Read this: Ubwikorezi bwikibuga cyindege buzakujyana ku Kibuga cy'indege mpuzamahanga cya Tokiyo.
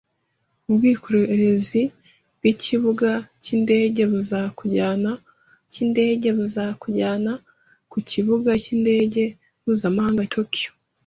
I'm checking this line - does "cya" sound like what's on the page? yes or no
no